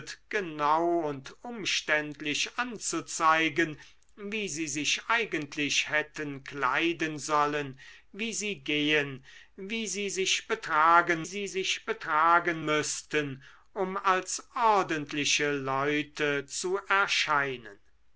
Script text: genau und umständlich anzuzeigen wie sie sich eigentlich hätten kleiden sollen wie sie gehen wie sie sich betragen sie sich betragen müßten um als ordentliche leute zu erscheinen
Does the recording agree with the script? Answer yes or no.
yes